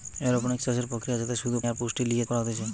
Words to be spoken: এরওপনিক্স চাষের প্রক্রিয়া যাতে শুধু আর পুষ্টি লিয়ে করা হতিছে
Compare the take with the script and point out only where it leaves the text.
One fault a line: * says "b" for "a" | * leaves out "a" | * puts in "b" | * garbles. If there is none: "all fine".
all fine